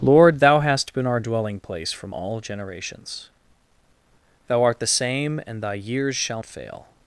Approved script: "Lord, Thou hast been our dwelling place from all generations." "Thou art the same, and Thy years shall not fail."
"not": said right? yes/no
no